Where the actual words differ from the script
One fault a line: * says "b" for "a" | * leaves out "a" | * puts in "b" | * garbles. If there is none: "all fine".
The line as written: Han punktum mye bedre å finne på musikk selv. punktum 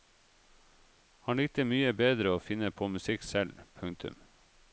* says "likte" for "punktum"